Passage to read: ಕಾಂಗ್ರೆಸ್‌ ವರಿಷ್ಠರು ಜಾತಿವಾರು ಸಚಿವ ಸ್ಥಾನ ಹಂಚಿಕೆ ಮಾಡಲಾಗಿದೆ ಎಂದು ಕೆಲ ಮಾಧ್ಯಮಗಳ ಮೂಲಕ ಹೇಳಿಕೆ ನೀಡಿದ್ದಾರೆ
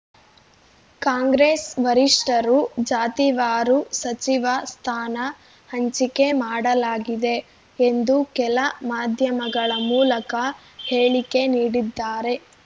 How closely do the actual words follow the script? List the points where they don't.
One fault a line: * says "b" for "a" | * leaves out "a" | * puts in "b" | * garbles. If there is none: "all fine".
all fine